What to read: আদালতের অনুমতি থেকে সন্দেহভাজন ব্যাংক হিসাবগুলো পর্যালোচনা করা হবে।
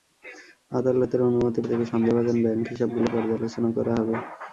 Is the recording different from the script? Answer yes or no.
no